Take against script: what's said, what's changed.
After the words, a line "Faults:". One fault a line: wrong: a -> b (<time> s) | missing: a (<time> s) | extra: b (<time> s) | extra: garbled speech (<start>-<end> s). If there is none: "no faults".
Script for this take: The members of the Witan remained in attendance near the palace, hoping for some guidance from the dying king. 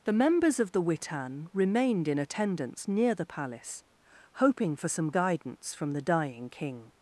The members of the Witan remained in attendance near the palace, hoping for some guidance from the dying king.
Faults:
no faults